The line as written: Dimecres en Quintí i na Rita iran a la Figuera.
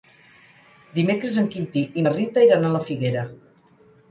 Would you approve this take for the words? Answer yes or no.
yes